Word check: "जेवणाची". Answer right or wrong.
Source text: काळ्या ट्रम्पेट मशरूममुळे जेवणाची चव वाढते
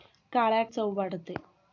wrong